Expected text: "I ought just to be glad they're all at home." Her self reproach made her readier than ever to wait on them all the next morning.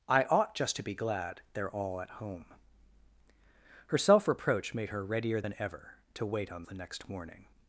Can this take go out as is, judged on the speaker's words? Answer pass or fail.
fail